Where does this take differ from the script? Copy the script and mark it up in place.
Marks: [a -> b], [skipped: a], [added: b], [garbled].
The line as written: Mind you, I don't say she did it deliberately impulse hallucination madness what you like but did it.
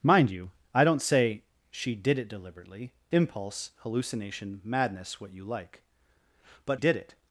Mind you, I don't say she did it deliberately impulse hallucination madness what you like but did it.